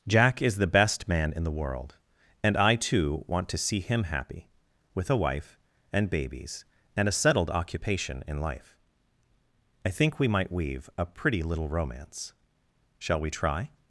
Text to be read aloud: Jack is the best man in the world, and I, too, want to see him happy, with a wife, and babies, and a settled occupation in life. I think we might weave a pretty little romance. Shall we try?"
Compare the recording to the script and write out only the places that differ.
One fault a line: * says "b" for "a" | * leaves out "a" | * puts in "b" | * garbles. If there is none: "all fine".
all fine